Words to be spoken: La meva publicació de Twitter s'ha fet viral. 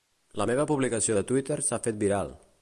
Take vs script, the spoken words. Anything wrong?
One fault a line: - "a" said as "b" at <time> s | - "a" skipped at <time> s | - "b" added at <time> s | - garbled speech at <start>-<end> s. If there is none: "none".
none